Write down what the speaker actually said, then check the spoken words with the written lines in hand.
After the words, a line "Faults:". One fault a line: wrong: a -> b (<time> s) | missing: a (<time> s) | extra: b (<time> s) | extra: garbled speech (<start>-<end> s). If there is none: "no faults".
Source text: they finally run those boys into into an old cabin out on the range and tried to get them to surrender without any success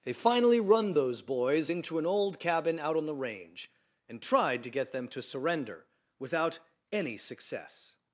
they finally run those boys into an old cabin out on the range and tried to get them to surrender without any success
Faults:
missing: into (2.0 s)